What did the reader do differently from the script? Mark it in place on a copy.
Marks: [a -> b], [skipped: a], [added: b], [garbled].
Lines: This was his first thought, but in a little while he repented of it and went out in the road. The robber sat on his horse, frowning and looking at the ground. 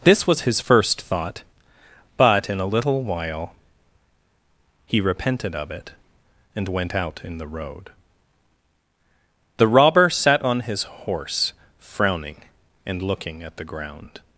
This was his first thought, but in a little while he repented of it and went out in the road. The robber sat on his horse, frowning and looking at the ground.